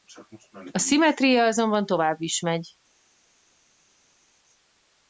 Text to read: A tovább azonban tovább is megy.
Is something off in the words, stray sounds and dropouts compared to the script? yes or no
yes